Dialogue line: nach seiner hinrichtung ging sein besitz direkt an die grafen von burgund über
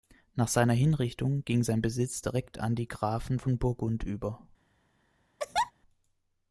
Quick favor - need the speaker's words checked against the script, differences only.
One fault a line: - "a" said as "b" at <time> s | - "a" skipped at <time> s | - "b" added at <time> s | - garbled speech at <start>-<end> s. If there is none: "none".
none